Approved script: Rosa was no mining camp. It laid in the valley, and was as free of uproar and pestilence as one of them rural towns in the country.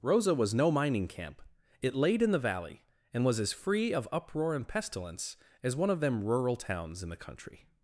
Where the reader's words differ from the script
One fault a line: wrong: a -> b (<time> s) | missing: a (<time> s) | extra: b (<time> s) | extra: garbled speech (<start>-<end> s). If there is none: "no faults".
no faults